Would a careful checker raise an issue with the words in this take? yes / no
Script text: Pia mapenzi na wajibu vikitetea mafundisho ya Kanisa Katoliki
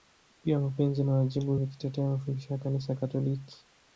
no